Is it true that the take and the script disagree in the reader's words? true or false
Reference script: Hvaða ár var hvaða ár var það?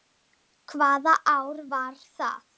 true